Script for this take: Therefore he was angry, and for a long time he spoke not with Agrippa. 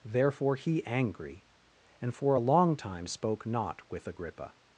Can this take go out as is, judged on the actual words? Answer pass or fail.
fail